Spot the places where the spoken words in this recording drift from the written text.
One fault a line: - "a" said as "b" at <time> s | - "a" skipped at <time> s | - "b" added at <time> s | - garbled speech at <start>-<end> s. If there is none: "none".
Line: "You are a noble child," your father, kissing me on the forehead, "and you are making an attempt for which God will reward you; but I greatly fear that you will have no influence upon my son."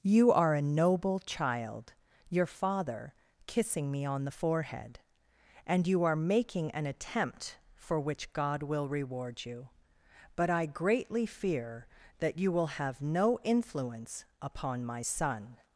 none